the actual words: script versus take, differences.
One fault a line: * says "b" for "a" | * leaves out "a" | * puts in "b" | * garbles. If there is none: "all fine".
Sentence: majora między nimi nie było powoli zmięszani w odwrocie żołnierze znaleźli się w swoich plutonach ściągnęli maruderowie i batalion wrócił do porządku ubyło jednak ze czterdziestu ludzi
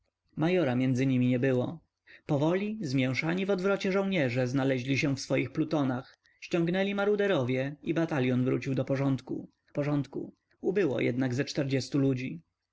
* puts in "porządku"